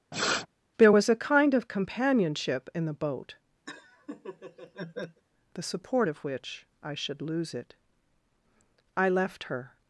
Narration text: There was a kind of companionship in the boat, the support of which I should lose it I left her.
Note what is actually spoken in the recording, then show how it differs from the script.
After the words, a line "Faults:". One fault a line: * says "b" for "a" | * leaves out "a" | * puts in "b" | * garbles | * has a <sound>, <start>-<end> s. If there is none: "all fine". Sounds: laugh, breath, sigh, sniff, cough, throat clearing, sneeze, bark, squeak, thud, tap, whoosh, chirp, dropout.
There was a kind of companionship in the boat, the support of which I should lose it I left her.
Faults:
* has a sniff, 0.1-0.5 s
* has a laugh, 3.7-5.2 s